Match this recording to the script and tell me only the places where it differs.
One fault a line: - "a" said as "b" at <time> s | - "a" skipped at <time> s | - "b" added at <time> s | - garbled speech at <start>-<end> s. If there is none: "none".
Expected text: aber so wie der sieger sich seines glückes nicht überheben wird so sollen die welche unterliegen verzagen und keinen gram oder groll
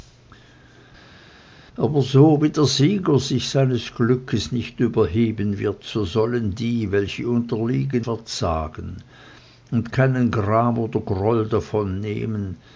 none